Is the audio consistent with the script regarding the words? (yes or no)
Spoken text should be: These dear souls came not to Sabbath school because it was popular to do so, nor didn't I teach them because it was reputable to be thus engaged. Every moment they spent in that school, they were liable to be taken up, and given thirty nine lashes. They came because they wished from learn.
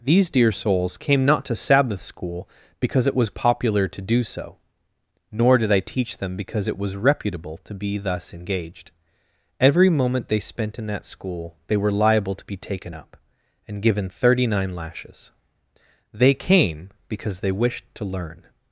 no